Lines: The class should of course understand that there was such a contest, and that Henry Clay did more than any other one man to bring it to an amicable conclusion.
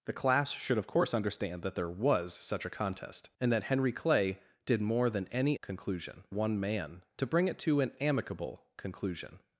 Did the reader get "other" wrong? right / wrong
wrong